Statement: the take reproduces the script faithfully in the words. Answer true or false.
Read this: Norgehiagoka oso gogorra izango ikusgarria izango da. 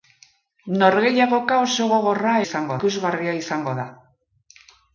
true